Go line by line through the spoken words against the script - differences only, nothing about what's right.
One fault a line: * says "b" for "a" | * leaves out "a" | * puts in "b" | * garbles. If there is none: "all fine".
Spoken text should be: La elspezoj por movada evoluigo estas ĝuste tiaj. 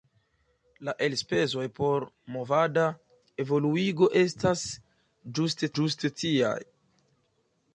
* puts in "ĝuste"